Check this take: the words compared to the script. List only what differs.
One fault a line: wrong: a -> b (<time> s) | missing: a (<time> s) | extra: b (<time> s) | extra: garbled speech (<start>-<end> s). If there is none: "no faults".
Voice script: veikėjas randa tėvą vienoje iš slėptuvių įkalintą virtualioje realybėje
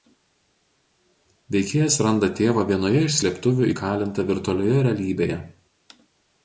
no faults